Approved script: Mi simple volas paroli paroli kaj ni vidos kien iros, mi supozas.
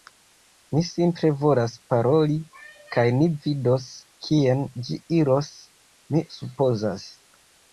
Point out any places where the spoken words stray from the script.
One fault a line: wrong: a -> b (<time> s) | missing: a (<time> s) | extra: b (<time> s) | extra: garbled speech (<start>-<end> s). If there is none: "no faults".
missing: paroli (2.4 s)
extra: ĝi (4.9 s)